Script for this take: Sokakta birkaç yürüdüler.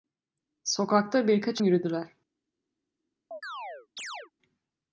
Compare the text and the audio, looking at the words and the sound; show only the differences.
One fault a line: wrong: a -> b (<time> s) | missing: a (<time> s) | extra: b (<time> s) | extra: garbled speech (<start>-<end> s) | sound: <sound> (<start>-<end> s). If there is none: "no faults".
sound: chirp (3.3-4.3 s)